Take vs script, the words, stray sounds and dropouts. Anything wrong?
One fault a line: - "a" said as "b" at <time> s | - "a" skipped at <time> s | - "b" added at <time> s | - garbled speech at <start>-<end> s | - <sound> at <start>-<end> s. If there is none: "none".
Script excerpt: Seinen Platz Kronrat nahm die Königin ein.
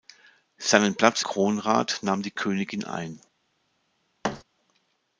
- thud at 4.2-4.4 s